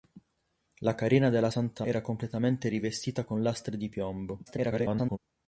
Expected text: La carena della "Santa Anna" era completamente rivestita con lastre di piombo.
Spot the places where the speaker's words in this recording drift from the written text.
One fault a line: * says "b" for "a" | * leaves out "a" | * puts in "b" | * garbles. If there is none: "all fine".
* leaves out "Anna"
* garbles